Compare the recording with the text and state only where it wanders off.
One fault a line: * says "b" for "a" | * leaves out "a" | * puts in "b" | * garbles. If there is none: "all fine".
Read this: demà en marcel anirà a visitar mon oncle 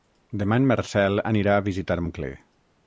* leaves out "mon"